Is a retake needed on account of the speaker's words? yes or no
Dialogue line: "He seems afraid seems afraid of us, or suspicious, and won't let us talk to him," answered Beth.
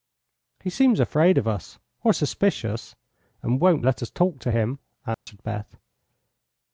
yes